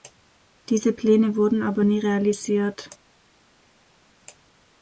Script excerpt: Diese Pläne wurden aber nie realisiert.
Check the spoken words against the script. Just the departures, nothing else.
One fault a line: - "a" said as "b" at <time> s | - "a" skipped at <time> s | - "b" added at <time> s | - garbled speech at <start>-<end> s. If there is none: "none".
none